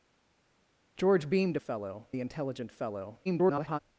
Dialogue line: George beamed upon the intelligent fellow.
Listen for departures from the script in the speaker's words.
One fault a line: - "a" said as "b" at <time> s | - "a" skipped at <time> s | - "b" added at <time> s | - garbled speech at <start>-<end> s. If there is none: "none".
- "upon" said as "fellow" at 1.6 s
- garbled speech at 3.2-3.8 s